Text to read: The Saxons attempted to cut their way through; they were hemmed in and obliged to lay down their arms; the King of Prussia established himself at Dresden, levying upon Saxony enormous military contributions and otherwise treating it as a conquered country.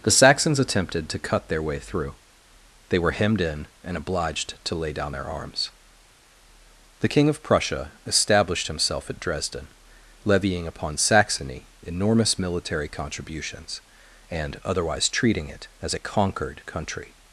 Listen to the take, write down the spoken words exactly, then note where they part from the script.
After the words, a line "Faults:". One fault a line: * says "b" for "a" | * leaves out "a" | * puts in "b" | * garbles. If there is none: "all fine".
The Saxons attempted to cut their way through; they were hemmed in and obliged to lay down their arms; the King of Prussia established himself at Dresden, levying upon Saxony enormous military contributions and otherwise treating it as a conquered country.
Faults:
all fine